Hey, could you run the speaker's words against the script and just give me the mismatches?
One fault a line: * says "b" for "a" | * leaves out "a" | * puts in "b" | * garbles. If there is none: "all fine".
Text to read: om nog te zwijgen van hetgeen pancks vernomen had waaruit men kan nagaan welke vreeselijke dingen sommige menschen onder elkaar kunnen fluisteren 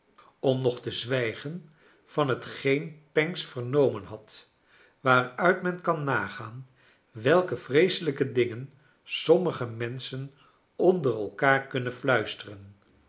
all fine